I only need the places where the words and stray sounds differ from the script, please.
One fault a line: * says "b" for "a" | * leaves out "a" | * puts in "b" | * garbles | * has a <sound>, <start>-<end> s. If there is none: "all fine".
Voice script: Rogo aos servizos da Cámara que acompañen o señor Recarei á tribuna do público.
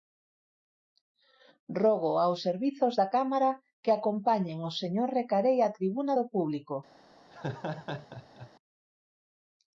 * has a laugh, 7.3-8.5 s